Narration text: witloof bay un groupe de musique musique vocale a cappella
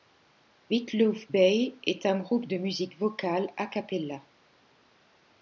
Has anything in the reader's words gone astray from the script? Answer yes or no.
yes